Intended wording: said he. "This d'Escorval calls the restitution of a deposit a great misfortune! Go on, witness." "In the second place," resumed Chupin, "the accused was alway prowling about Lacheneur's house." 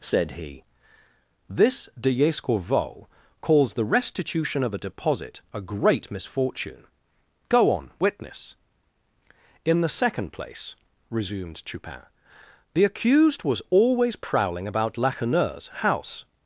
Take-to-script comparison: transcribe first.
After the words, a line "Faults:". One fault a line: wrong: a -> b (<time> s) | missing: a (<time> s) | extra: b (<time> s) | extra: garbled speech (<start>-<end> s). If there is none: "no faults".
said he. "This d'Escorval calls the restitution of a deposit a great misfortune! Go on, witness." "In the second place," resumed Chupin, "the accused was always prowling about Lacheneur's house."
Faults:
wrong: alway -> always (13.7 s)